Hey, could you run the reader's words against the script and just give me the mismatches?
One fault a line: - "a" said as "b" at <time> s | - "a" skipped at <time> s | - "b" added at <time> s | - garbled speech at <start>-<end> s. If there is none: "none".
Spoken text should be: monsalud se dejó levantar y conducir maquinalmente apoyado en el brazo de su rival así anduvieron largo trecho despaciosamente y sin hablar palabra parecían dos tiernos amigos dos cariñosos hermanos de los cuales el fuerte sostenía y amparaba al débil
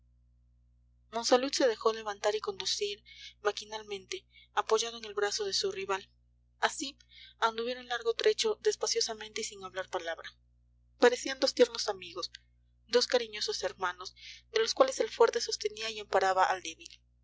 none